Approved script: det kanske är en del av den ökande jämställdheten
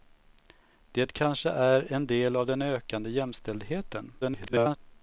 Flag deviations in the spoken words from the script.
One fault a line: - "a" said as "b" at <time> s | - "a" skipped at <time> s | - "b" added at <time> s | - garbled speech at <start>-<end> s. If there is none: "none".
- garbled speech at 4.2-4.8 s